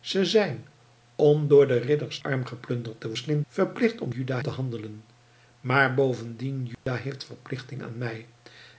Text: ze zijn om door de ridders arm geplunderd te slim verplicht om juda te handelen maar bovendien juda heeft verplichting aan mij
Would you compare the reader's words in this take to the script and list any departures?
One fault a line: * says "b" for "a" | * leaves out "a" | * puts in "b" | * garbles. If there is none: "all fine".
all fine